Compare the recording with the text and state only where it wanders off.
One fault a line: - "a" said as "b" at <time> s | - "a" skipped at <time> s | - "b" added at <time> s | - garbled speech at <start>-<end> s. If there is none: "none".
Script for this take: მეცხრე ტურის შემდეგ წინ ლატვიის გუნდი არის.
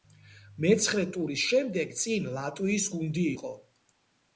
- "არის" said as "იყო" at 3.3 s